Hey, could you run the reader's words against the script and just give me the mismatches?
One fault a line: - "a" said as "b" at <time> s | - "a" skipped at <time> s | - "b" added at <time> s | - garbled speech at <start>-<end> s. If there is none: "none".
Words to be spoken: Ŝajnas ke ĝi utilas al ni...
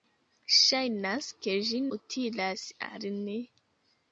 none